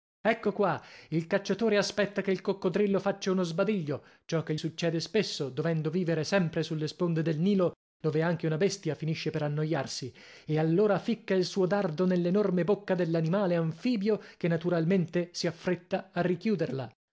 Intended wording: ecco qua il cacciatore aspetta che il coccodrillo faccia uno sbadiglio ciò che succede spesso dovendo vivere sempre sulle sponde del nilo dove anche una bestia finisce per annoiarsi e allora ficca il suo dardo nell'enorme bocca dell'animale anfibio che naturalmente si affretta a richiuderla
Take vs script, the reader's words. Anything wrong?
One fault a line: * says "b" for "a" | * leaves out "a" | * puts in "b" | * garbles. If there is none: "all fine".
all fine